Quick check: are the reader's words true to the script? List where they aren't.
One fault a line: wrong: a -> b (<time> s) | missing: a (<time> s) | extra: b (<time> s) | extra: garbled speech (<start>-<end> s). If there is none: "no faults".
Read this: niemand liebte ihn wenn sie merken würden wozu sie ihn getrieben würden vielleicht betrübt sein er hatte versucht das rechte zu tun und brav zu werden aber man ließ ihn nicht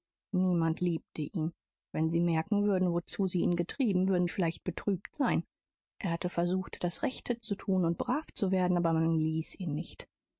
no faults